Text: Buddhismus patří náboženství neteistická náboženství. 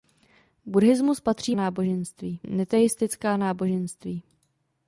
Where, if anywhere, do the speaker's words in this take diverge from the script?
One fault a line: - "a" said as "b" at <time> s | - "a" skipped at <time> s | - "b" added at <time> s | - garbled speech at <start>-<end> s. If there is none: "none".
none